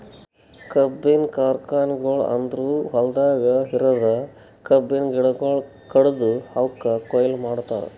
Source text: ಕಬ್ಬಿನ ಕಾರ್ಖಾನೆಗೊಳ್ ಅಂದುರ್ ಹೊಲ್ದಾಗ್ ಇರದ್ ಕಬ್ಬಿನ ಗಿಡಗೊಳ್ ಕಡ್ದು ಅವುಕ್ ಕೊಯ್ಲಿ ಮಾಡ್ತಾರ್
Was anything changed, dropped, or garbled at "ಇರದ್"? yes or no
no